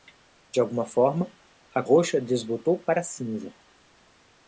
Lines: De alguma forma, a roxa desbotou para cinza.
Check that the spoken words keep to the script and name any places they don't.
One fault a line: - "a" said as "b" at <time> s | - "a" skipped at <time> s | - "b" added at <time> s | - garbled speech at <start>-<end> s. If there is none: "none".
none